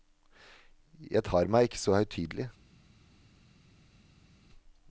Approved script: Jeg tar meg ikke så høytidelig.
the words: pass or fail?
pass